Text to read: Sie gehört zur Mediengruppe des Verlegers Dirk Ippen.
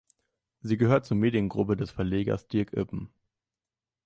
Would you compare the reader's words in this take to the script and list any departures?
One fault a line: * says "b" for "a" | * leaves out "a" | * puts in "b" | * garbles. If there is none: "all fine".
all fine